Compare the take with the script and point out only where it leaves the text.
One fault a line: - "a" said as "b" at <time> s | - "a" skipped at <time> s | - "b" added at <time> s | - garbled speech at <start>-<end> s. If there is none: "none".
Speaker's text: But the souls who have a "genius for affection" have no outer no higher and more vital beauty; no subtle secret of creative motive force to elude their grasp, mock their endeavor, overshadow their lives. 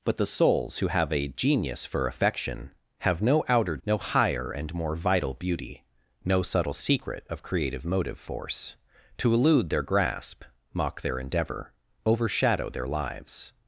none